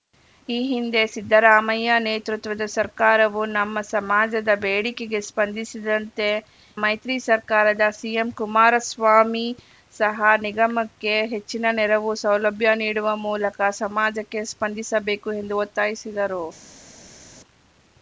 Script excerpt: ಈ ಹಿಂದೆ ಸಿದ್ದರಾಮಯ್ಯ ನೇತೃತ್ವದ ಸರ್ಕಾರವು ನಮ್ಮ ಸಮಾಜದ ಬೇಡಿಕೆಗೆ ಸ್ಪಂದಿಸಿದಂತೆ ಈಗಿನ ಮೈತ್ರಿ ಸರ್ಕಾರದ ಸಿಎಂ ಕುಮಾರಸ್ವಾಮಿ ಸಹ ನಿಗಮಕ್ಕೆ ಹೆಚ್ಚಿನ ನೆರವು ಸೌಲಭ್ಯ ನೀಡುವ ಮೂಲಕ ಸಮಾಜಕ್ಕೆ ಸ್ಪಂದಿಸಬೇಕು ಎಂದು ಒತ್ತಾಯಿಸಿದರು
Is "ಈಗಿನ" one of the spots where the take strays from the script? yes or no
yes